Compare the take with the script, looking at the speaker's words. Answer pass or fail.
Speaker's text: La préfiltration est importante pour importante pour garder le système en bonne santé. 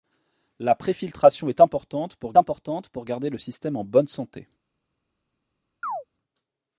pass